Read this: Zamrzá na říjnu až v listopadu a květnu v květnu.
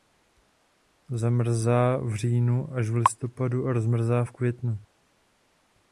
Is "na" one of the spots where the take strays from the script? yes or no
yes